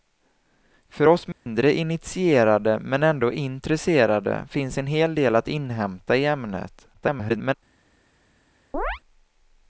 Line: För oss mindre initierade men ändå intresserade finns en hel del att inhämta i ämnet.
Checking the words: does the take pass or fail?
fail